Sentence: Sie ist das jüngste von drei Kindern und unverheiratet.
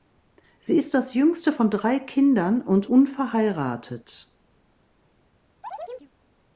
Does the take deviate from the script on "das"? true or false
false